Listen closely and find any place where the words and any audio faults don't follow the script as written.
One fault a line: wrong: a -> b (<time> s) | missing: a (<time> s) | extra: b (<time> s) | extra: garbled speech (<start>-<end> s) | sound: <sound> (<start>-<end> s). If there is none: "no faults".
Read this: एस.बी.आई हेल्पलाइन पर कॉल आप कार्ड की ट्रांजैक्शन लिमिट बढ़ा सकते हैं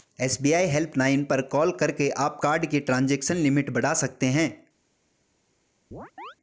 extra: करके (1.7 s)
sound: chirp (5.9-6.4 s)